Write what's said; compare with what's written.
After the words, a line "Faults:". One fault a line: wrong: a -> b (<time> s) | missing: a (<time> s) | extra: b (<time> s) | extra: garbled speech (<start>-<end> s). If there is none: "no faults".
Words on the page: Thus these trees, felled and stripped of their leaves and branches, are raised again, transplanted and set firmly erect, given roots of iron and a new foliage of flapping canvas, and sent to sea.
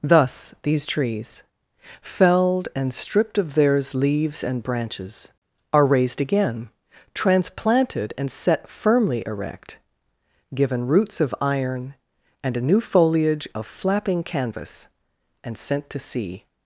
Thus these trees, felled and stripped of theirs leaves and branches, are raised again, transplanted and set firmly erect, given roots of iron and a new foliage of flapping canvas, and sent to sea.
Faults:
wrong: their -> theirs (3.5 s)